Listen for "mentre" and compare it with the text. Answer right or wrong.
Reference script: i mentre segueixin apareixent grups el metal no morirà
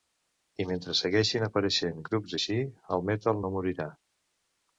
right